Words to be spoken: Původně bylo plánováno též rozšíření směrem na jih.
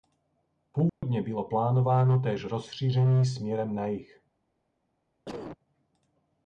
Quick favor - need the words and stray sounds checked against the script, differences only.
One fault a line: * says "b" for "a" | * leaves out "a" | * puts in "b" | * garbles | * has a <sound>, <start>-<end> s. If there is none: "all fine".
* has a dropout, 0.9-1.0 s
* has a cough, 5.3-5.6 s